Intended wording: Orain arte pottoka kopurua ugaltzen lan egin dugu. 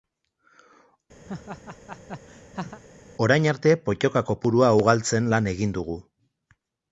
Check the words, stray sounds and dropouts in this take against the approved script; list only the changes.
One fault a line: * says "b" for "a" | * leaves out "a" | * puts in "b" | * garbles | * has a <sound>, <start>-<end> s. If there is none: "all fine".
* has a laugh, 1.3-2.8 s